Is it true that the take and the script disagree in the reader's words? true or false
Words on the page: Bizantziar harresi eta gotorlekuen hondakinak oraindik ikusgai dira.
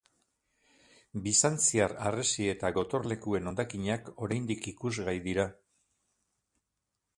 false